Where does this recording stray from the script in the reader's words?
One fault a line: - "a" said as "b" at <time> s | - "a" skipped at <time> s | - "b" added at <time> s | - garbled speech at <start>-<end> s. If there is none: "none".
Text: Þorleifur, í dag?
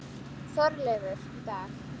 none